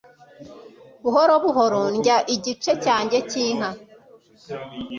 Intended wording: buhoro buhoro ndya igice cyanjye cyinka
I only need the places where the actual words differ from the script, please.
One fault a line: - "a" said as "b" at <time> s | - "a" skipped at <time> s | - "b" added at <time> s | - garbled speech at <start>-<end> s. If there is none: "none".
none